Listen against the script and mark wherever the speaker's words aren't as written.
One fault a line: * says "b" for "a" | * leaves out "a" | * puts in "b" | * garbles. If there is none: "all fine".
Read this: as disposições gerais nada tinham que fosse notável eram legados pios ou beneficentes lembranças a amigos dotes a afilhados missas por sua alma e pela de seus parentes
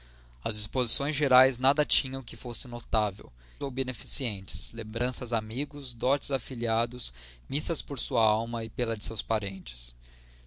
* leaves out "eram legados pios"